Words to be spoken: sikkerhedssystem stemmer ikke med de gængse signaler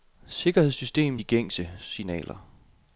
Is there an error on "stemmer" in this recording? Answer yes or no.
yes